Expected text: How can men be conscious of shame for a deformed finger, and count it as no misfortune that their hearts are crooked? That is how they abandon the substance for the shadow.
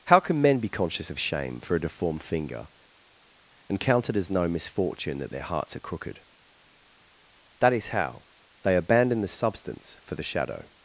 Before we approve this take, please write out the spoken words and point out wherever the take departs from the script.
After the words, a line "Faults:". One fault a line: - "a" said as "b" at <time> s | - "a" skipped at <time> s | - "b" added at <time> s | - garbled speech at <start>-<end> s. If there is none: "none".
How can men be conscious of shame for a deformed finger, and count it as no misfortune that their hearts are crooked? That is how they abandon the substance for the shadow.
Faults:
none